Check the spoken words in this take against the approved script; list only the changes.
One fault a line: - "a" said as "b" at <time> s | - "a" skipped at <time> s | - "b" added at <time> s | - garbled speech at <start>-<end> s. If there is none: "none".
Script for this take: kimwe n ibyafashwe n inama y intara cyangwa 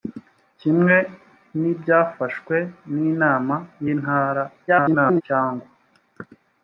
- garbled speech at 4.7-5.2 s